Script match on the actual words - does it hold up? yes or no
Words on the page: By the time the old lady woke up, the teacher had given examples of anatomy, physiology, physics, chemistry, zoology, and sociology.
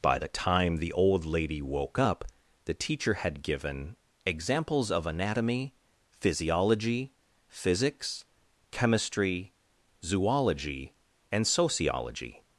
yes